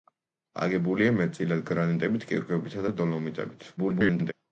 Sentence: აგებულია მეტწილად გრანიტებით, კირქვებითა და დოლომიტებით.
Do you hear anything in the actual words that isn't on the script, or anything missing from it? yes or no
yes